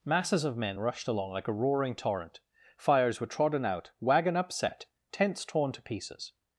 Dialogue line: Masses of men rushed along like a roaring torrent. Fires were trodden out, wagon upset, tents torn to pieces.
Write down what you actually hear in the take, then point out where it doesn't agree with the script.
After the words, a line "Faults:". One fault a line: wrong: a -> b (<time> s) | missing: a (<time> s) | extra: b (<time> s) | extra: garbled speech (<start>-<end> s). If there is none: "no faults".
Masses of men rushed along like a roaring torrent. Fires were trodden out, wagon upset, tents torn to pieces.
Faults:
no faults